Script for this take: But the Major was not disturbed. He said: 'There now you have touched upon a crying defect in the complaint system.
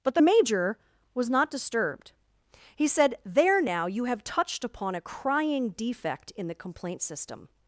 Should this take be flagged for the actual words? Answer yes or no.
no